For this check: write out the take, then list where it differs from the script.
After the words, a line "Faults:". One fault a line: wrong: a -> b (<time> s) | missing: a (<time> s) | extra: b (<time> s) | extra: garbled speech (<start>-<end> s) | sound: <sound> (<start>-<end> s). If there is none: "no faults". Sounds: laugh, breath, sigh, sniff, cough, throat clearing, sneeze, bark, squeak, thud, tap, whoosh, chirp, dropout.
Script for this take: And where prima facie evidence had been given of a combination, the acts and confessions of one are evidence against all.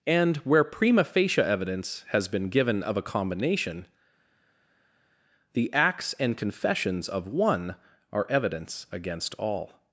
And where prima facie evidence has been given of a combination, the acts and confessions of one are evidence against all.
Faults:
wrong: had -> has (2.1 s)